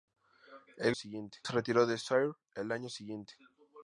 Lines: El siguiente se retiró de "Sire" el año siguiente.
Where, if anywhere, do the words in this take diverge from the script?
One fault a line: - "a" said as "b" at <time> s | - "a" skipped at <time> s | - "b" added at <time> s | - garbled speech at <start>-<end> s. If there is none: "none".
none